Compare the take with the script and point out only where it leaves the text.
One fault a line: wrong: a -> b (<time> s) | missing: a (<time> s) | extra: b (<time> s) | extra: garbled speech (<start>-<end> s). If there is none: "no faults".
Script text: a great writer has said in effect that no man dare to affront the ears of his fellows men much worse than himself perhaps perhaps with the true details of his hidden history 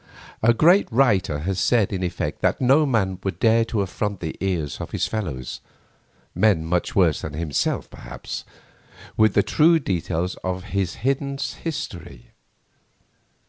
extra: would (3.2 s)
missing: perhaps (8.4 s)